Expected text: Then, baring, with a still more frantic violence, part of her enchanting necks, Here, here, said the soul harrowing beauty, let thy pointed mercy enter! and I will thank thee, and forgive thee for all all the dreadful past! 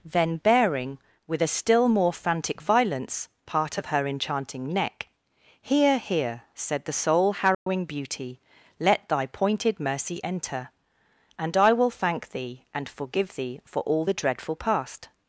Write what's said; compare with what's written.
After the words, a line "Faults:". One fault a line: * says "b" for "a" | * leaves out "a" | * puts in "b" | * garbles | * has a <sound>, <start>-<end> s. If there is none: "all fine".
Then, baring, with a still more frantic violence, part of her enchanting neck, Here, here, said the soul harrowing beauty, let thy pointed mercy enter! and I will thank thee, and forgive thee for all the dreadful past!
Faults:
* says "neck" for "necks"
* has a dropout, 7.5-7.7 s
* leaves out "all"